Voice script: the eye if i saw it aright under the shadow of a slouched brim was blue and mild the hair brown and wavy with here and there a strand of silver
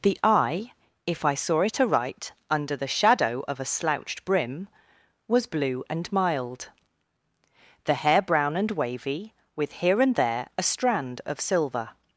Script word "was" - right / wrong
right